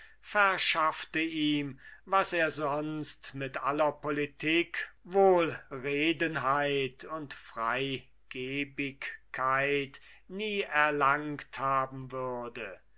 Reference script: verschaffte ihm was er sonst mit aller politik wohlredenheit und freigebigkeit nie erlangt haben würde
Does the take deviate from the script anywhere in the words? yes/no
no